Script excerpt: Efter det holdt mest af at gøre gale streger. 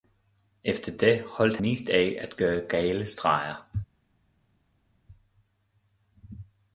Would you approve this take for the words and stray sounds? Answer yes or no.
yes